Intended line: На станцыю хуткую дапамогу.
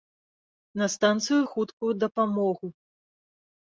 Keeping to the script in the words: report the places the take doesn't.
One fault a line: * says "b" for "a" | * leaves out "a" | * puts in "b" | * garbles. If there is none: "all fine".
all fine